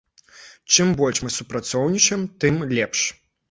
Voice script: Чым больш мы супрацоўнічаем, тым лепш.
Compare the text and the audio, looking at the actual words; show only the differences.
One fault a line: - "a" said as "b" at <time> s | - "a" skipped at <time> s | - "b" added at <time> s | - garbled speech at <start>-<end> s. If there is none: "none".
none